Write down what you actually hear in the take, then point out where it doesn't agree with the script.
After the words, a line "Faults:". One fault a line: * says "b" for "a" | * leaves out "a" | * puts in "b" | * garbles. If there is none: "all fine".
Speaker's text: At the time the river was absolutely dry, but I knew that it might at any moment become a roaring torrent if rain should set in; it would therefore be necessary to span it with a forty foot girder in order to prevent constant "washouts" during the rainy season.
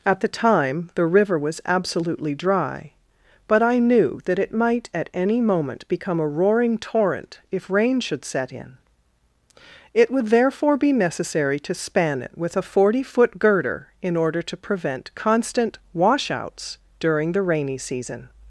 At the time the river was absolutely dry, but I knew that it might at any moment become a roaring torrent if rain should set in; it would therefore be necessary to span it with a forty foot girder in order to prevent constant "washouts" during the rainy season.
Faults:
all fine